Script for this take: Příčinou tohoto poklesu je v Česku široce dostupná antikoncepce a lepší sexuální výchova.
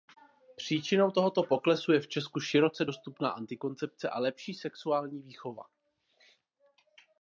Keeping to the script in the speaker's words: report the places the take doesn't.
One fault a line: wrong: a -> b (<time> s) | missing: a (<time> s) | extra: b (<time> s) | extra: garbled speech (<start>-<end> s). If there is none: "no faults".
no faults